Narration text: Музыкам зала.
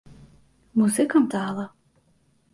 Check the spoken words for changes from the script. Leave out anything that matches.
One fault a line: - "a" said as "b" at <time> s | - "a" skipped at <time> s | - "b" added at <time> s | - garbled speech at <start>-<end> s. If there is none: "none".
none